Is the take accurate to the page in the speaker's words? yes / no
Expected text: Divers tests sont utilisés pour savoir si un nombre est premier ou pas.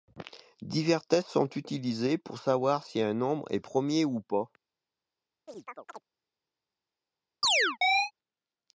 yes